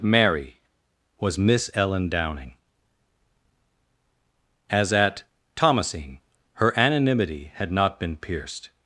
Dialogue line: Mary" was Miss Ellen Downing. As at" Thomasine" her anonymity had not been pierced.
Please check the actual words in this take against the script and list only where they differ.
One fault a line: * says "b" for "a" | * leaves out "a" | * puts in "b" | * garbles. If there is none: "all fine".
all fine